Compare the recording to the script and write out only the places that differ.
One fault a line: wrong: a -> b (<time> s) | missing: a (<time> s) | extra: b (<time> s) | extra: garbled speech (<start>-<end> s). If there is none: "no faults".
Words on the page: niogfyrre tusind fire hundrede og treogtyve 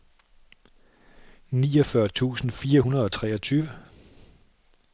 no faults